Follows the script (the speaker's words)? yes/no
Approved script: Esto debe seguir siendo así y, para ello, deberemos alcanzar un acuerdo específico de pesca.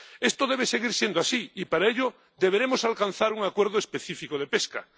yes